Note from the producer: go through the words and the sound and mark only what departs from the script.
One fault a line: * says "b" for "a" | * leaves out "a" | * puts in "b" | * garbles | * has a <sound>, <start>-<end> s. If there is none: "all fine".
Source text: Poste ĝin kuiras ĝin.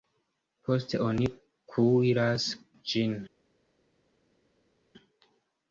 * says "oni" for "ĝin"